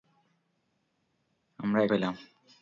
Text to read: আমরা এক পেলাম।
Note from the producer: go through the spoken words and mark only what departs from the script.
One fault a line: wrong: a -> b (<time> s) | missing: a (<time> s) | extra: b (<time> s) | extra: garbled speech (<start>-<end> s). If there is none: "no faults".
no faults